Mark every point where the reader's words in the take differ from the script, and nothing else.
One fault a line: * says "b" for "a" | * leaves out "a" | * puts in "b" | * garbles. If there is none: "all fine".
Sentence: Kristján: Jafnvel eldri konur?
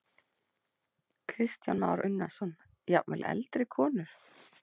* puts in "Már Unnarsson"